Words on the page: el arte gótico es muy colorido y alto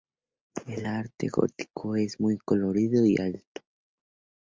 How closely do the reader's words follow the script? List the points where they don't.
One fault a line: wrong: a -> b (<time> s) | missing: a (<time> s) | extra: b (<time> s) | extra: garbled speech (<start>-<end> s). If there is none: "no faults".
no faults